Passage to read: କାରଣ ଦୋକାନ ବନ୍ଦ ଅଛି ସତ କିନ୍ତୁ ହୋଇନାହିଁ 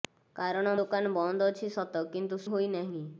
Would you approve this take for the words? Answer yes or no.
yes